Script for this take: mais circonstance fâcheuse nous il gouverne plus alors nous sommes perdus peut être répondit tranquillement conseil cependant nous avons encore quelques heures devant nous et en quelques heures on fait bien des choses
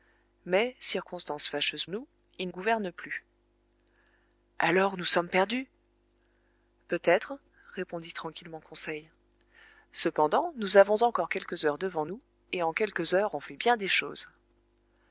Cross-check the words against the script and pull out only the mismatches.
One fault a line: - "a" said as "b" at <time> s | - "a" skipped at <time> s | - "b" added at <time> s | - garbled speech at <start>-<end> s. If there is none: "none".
none